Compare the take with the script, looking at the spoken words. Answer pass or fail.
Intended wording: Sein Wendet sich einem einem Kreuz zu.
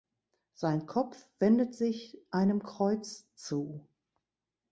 fail